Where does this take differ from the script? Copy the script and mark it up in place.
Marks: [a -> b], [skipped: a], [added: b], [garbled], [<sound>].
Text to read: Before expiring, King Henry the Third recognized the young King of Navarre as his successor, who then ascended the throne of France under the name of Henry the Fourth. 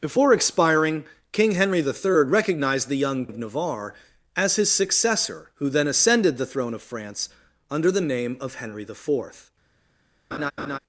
Before expiring, King Henry the Third recognized the young [skipped: King] of Navarre as his successor, who then ascended the throne of France under the name of Henry the Fourth. [laugh]